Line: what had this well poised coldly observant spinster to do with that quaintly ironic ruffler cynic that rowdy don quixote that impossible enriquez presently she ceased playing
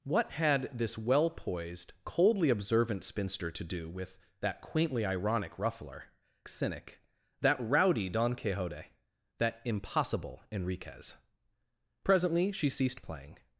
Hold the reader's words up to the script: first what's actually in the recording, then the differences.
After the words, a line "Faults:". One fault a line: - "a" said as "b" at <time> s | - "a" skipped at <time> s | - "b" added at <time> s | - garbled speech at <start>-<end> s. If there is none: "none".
what had this well poised coldly observant spinster to do with that quaintly ironic ruffler cynic that rowdy don quixote that impossible enriquez presently she ceased playing
Faults:
none